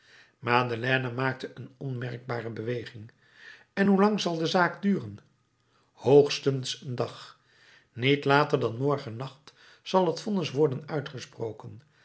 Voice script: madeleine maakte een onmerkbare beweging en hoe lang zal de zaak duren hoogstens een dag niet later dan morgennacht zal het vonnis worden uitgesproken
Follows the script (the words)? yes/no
yes